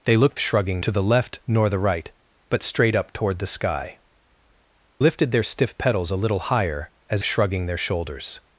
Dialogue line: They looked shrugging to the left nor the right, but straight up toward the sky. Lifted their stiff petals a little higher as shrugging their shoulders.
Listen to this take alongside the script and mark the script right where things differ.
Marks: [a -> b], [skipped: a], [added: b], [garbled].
They looked shrugging to the left nor the right, but straight up toward the sky. Lifted their stiff petals a little higher as shrugging their shoulders.